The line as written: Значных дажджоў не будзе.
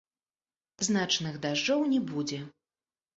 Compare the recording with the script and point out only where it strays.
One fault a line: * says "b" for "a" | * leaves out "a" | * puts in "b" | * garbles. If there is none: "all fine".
all fine